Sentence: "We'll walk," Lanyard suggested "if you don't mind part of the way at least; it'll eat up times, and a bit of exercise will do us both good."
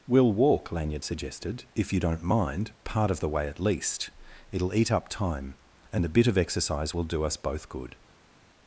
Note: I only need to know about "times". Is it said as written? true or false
false